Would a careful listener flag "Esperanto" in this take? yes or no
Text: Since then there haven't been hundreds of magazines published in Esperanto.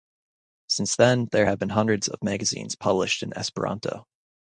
no